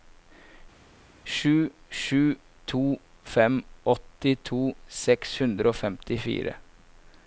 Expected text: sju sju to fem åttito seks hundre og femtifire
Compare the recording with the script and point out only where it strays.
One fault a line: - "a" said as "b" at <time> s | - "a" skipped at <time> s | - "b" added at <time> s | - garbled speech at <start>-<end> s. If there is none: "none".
none